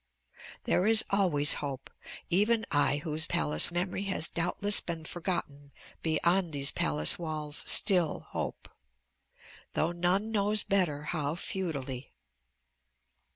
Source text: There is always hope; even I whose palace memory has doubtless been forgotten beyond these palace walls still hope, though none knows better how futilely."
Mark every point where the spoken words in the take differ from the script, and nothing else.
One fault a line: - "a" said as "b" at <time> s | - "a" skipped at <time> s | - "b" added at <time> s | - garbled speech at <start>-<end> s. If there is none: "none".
none